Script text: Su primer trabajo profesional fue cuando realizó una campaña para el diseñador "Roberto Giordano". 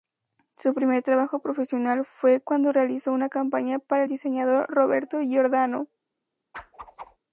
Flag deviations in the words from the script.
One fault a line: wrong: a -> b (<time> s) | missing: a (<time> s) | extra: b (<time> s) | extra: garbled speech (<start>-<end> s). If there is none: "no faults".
no faults